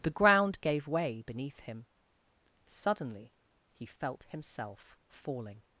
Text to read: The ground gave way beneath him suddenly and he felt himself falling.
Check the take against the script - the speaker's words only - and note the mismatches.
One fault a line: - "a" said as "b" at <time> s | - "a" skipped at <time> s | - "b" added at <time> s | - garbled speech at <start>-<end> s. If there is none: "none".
- "and" skipped at 3.3 s